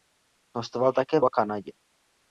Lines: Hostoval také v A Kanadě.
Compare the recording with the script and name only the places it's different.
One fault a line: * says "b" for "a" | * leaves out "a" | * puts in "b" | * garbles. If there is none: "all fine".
all fine